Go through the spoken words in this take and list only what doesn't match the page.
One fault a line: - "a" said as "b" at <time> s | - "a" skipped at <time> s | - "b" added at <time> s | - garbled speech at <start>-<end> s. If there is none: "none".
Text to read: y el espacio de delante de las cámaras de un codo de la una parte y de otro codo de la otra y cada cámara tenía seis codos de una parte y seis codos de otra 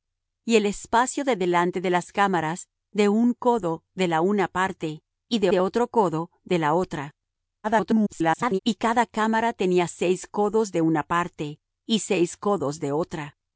- "de" added at 5.5 s
- garbled speech at 7.6-8.6 s